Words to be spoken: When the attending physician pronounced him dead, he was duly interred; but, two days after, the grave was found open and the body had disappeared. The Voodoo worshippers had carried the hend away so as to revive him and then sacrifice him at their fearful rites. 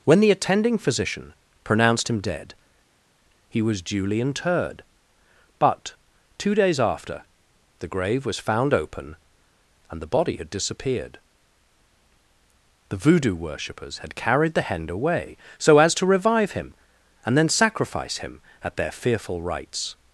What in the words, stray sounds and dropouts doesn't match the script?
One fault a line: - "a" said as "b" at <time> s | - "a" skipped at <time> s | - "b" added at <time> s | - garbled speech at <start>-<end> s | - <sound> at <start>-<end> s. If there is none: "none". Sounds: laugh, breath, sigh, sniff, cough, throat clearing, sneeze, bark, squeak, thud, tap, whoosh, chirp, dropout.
none